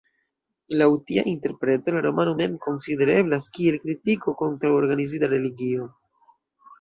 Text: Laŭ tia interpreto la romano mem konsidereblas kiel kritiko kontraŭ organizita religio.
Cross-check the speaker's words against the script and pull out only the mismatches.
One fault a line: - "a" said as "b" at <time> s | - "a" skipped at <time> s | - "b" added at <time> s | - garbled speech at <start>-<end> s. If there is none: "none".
none